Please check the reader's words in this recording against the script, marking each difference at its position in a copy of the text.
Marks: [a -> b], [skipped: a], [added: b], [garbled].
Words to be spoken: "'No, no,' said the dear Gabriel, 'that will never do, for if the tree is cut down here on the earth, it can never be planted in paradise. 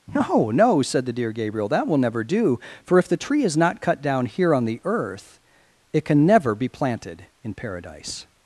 "'No, no,' said the dear Gabriel, 'that will never do, for if the tree is [added: not] cut down here on the earth, it can never be planted in paradise.